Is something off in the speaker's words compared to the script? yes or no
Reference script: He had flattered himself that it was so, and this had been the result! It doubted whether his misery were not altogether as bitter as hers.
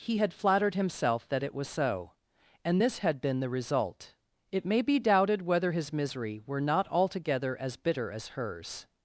yes